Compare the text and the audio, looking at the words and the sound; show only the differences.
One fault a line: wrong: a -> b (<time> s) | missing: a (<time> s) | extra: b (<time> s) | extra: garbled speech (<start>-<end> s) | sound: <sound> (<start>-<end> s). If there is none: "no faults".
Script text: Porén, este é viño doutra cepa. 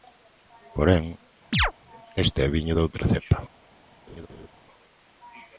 sound: chirp (1.5-1.7 s)
sound: laugh (4.1-4.5 s)